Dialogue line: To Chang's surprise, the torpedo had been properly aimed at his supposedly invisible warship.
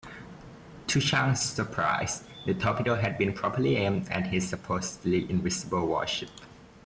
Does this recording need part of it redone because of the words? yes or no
no